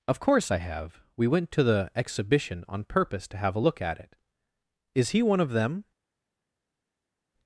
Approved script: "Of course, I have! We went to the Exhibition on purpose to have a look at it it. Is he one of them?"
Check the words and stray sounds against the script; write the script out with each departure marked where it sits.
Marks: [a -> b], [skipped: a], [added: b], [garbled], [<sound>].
"Of course, I have! We went to the Exhibition on purpose to have a look at it [skipped: it.] Is he one of them?"